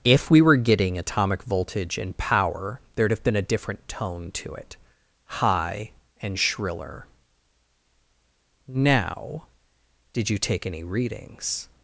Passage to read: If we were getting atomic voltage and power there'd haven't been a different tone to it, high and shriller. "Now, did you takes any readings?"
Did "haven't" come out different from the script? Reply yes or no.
yes